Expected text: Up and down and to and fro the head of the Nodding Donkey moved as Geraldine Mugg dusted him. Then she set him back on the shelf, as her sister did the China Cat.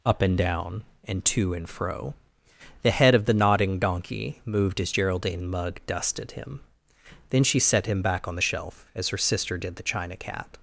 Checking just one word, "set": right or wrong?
right